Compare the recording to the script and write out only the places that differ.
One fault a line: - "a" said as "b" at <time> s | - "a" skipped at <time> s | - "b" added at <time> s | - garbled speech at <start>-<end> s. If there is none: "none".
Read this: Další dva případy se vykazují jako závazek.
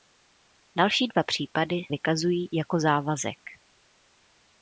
- "se" skipped at 1.8 s